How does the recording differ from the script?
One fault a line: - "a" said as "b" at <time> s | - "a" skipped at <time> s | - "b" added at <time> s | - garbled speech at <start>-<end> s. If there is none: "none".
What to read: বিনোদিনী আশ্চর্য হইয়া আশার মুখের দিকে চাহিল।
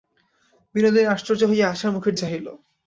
- "দিকে" skipped at 2.1 s